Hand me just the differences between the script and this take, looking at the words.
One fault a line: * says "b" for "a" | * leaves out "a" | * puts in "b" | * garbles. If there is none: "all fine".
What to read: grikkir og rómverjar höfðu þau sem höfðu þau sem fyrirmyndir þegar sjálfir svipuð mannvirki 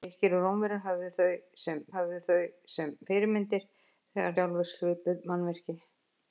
all fine